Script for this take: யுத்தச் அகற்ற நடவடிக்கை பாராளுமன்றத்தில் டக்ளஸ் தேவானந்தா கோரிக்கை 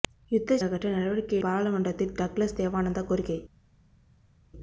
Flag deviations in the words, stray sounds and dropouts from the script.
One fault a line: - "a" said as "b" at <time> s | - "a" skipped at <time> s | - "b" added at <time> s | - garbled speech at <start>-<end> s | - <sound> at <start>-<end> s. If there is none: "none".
none